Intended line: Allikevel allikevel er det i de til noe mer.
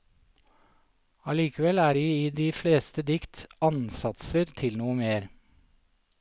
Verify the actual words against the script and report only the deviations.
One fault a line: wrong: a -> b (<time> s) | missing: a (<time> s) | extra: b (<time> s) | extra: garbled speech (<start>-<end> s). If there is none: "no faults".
missing: allikevel (1.8 s)
extra: fleste dikt ansatser (2.6 s)